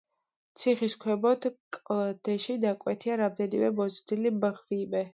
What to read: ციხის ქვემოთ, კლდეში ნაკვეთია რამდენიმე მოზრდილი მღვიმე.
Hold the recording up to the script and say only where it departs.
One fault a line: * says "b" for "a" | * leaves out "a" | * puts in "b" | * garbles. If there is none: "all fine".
all fine